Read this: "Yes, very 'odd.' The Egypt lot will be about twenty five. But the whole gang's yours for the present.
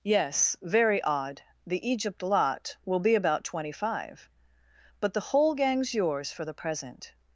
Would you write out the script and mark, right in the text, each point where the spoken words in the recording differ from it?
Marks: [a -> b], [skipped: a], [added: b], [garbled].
"Yes, very 'odd.' The Egypt lot will be about twenty five. But the whole gang's yours for the present.